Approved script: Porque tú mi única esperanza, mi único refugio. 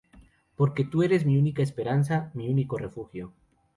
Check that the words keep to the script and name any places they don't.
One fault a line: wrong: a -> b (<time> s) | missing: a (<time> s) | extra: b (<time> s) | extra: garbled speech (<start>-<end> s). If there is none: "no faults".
extra: eres (1.0 s)